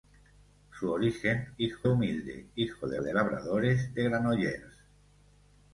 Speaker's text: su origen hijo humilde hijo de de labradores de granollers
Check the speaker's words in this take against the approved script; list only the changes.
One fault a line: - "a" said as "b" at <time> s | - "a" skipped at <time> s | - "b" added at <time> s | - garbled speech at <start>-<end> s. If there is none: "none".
none